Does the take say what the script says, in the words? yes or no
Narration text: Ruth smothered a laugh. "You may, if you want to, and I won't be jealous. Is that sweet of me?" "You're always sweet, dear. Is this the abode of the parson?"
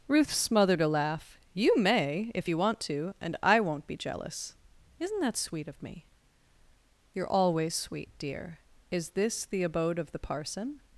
no